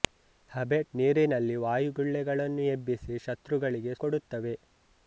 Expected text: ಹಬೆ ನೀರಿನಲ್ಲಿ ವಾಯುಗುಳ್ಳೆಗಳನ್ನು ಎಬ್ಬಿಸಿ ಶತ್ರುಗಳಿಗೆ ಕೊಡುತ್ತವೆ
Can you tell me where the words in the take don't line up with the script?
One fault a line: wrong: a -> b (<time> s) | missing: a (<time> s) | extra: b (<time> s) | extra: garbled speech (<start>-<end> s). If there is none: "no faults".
no faults